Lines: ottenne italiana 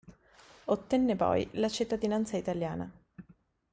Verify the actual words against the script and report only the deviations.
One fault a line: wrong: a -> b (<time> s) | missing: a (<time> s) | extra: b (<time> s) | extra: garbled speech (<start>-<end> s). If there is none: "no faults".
extra: poi la cittadinanza (1.1 s)